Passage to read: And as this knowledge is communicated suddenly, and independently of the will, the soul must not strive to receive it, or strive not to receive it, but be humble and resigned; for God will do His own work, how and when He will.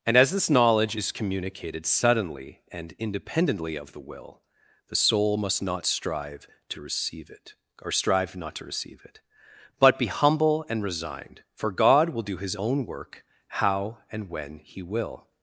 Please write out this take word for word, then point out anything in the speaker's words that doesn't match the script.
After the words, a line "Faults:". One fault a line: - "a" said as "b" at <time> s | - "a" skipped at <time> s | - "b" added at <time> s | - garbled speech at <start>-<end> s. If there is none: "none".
And as this knowledge is communicated suddenly, and independently of the will, the soul must not strive to receive it, or strive not to receive it, but be humble and resigned; for God will do His own work, how and when He will.
Faults:
none